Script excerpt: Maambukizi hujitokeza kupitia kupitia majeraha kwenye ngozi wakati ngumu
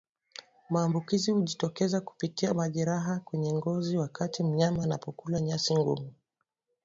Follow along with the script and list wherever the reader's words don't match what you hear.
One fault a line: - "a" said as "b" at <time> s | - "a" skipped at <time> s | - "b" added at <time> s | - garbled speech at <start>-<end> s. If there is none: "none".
- "kupitia" skipped at 2.5 s
- "mnyama anapokula nyasi" added at 4.4 s